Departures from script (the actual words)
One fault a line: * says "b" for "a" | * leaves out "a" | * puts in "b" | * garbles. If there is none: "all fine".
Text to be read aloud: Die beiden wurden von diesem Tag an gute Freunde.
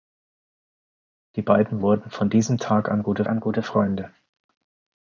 * puts in "an gute"